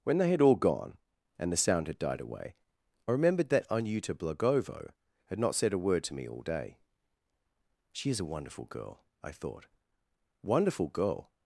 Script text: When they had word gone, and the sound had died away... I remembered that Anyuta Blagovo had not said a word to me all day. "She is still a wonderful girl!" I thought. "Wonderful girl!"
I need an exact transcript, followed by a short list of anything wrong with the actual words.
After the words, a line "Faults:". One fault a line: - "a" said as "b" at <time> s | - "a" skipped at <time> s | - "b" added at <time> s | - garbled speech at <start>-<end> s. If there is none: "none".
When they had all gone, and the sound had died away... I remembered that Anyuta Blagovo had not said a word to me all day. "She is a wonderful girl!" I thought. "Wonderful girl!"
Faults:
- "word" said as "all" at 0.4 s
- "still" skipped at 8.2 s